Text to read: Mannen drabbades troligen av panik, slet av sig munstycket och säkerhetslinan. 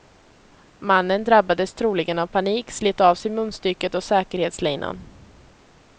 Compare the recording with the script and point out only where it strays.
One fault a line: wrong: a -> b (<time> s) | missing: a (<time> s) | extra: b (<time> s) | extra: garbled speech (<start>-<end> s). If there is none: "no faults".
no faults